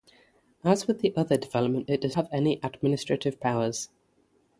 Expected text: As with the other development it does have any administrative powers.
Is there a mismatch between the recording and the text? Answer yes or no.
no